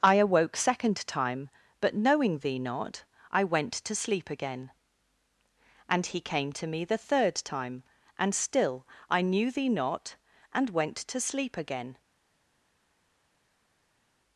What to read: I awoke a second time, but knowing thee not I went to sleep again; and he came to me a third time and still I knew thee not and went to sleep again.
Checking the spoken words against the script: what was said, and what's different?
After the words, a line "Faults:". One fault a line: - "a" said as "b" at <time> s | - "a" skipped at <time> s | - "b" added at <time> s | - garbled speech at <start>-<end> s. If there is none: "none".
I awoke second time, but knowing thee not I went to sleep again; and he came to me the third time and still I knew thee not and went to sleep again.
Faults:
- "a" skipped at 0.6 s
- "a" said as "the" at 6.9 s